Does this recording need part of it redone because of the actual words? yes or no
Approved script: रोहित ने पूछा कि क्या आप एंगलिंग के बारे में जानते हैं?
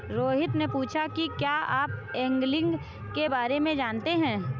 no